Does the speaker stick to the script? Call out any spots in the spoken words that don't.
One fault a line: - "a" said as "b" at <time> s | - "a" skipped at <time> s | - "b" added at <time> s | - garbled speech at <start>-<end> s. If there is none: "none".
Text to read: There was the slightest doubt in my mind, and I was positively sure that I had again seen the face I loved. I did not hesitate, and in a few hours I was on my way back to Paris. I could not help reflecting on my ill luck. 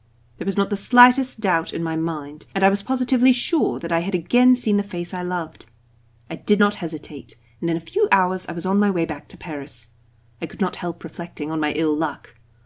- "not" added at 0.6 s